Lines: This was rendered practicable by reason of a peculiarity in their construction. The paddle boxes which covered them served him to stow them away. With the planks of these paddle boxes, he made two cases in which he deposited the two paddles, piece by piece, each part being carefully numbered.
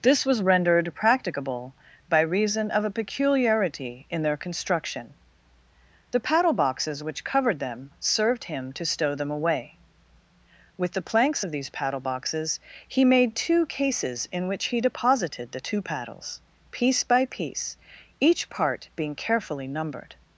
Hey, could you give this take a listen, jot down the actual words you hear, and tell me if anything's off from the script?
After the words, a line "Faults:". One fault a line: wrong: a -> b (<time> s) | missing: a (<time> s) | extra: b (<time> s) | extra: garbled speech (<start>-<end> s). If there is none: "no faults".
This was rendered practicable by reason of a peculiarity in their construction. The paddle boxes which covered them served him to stow them away. With the planks of these paddle boxes, he made two cases in which he deposited the two paddles, piece by piece, each part being carefully numbered.
Faults:
no faults